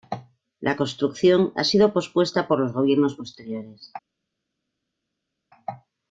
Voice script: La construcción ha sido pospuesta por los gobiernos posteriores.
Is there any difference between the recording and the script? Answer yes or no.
no